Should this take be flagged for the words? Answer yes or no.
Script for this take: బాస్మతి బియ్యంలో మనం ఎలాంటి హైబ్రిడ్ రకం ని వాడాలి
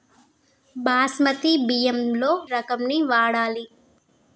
yes